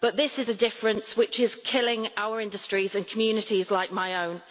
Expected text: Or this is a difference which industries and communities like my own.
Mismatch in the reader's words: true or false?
true